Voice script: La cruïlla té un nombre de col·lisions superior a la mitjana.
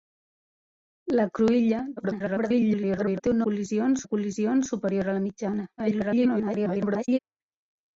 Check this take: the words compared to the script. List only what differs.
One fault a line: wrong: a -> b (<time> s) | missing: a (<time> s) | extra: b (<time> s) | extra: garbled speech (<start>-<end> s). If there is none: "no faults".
extra: garbled speech (2.0-3.2 s)
wrong: nombre -> col·lisions (3.4 s)
extra: garbled speech (5.8-7.2 s)